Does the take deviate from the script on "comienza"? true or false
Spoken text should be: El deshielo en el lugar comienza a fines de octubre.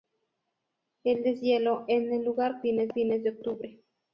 true